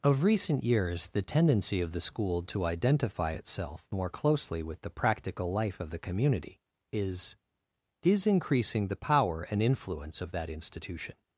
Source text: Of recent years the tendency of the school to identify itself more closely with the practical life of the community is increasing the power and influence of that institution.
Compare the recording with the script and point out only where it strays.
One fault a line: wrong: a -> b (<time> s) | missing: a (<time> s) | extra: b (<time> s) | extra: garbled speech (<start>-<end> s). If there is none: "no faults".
extra: is (8.0 s)